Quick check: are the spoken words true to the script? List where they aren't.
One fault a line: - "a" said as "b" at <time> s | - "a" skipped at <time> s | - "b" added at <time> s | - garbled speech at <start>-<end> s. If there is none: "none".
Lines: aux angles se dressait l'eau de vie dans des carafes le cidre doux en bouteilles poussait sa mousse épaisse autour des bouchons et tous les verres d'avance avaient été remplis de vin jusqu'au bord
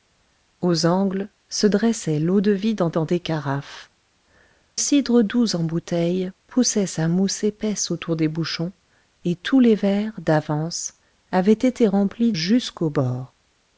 - "dans" added at 2.9 s
- "le" skipped at 3.9 s
- "de vin" skipped at 12.3 s